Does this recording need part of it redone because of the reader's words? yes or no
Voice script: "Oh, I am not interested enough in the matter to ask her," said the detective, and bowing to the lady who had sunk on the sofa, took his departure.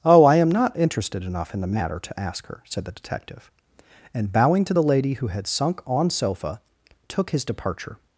yes